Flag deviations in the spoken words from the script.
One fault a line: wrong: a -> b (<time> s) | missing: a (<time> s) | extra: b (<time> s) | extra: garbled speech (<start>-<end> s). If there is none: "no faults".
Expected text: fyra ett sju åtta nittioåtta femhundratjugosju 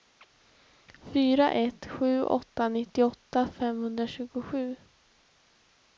no faults